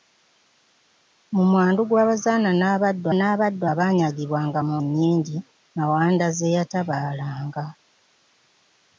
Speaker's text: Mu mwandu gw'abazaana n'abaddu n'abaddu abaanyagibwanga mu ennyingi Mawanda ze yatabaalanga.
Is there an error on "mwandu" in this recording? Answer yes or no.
no